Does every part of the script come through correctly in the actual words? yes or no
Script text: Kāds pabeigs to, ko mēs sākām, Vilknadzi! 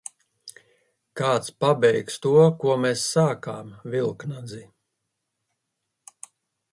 yes